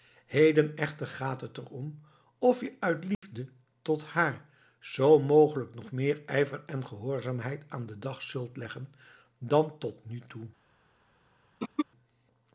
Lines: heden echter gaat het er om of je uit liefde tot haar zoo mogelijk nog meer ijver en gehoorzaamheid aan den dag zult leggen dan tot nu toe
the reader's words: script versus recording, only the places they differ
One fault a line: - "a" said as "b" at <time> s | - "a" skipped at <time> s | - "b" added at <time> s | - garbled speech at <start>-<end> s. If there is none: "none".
none